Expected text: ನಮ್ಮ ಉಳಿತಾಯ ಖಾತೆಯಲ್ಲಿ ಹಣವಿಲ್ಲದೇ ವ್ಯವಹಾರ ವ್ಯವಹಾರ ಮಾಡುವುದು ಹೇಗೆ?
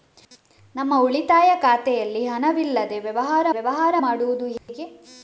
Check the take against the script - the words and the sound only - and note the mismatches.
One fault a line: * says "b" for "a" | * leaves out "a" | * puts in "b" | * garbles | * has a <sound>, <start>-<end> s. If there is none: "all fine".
* has a dropout, 4.6-4.7 s